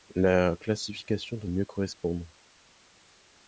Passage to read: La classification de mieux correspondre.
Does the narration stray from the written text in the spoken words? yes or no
no